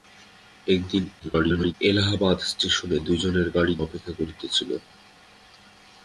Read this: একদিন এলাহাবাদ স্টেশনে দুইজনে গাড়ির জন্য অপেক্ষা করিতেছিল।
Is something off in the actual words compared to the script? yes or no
yes